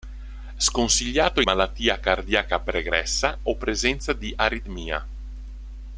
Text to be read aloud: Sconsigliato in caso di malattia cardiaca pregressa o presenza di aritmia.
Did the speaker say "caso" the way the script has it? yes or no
no